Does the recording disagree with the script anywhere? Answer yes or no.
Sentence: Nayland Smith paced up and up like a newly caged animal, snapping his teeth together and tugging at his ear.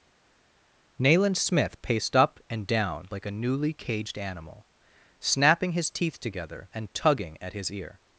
yes